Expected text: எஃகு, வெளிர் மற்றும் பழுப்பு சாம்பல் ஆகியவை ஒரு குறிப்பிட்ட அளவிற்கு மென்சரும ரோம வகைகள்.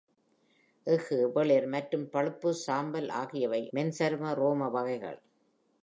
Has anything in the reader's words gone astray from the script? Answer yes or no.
yes